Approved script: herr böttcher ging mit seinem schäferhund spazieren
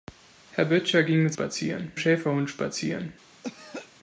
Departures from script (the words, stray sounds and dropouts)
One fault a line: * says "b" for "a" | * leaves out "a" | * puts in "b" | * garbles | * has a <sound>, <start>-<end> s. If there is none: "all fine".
* says "spazieren" for "seinem"
* has a throat clearing, 3.4-3.9 s